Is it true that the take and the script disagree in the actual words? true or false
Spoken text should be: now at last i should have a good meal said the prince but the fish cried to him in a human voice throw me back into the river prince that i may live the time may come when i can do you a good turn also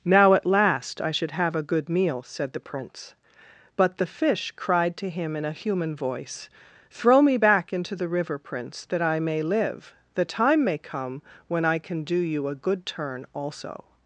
false